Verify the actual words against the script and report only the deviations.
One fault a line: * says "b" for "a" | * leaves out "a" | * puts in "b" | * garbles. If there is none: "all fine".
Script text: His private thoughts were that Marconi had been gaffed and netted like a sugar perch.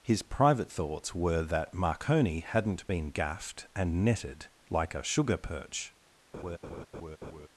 * says "hadn't" for "had"